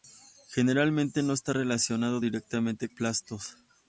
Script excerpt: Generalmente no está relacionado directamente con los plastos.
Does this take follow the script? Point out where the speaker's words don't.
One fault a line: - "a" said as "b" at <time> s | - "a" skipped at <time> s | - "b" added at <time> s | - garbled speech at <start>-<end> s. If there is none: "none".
- "con los" skipped at 2.9 s